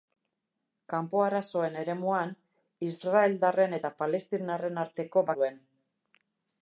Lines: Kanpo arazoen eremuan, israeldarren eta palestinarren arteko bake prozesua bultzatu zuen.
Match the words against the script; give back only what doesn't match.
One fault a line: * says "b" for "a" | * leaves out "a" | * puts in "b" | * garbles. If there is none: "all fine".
* leaves out "bake prozesua bultzatu"